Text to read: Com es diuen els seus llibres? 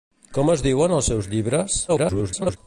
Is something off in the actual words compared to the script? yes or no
yes